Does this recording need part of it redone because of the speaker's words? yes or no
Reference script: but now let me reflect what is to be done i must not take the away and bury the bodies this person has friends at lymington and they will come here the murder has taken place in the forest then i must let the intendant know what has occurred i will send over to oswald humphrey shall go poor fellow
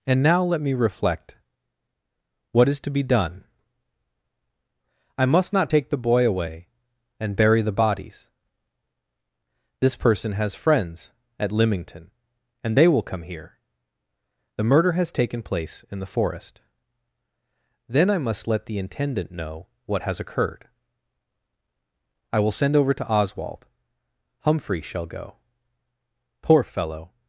yes